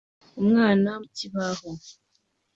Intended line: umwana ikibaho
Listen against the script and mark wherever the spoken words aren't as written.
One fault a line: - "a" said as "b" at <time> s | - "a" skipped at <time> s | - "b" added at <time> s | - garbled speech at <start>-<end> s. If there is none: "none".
none